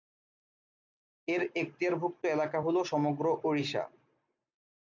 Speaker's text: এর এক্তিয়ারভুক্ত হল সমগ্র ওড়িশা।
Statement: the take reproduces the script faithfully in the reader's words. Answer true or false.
false